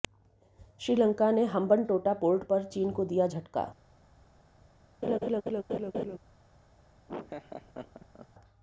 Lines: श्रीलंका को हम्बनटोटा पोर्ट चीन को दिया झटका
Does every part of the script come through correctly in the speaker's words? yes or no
no